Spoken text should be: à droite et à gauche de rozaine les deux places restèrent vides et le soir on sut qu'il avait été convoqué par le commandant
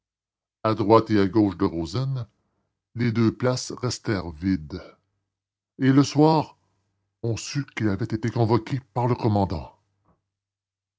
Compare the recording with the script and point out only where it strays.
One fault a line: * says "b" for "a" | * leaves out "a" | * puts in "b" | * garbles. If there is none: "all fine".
all fine